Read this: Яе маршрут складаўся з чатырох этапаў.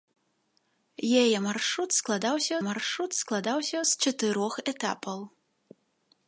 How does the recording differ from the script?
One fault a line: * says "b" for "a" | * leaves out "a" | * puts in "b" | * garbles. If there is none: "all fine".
* puts in "маршрут складаўся"